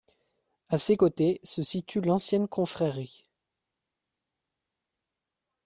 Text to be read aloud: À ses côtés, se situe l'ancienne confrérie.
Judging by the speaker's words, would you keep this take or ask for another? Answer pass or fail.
pass